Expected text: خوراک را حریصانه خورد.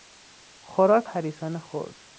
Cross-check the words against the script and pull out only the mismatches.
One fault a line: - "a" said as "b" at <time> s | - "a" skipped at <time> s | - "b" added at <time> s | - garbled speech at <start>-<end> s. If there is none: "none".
- "را" skipped at 1.1 s